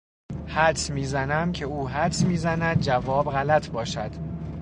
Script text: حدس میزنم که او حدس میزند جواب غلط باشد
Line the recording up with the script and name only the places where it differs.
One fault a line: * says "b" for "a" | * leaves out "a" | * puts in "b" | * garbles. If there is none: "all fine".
all fine